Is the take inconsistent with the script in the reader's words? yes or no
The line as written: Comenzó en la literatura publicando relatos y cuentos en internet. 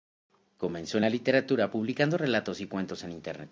no